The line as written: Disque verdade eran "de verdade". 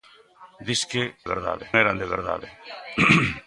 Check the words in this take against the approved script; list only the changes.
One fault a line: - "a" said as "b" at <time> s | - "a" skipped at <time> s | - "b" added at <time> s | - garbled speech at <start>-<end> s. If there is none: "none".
none